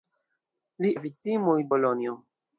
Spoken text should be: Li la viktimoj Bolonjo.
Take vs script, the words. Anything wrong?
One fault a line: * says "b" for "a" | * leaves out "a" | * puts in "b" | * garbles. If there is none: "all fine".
all fine